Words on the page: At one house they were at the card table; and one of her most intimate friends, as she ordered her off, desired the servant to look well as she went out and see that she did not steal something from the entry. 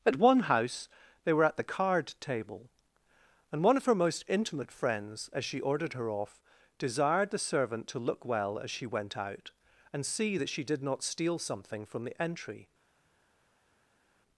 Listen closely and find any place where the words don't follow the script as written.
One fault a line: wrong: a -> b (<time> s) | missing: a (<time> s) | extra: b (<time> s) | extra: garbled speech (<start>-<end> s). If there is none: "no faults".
no faults